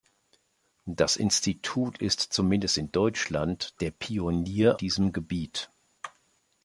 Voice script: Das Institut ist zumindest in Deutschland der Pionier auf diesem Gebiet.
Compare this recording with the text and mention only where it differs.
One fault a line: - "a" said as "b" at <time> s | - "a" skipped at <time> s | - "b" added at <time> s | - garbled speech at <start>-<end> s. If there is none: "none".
- "auf" skipped at 4.8 s